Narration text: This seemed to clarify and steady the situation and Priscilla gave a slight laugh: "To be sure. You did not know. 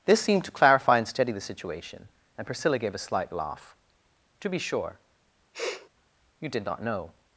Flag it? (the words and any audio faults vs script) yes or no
yes